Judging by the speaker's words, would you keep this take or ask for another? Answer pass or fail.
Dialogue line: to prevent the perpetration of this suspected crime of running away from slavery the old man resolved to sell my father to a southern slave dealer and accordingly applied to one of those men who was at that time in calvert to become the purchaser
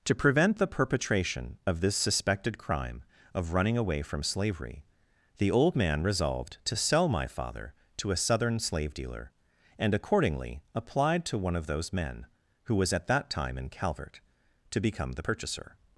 pass